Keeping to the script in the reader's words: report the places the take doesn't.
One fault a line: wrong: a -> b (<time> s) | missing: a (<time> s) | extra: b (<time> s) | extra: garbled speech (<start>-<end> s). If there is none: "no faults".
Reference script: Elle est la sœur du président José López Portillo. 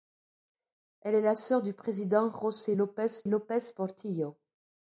extra: López (3.3 s)